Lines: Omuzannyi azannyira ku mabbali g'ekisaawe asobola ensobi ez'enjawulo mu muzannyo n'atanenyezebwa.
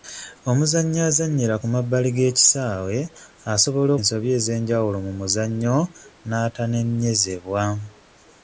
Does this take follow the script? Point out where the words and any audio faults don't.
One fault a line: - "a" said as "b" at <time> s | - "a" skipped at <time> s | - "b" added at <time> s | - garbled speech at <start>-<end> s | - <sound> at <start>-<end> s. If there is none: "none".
none